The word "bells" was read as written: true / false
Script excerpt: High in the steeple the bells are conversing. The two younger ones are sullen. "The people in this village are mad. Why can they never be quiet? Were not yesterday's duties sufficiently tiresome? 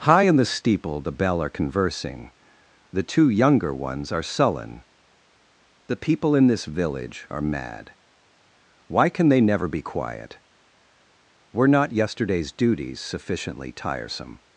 false